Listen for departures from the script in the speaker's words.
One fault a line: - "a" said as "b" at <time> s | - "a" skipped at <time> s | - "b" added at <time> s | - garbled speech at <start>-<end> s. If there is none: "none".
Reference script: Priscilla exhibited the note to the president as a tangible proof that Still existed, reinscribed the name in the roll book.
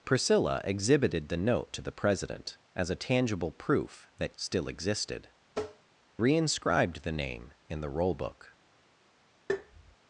none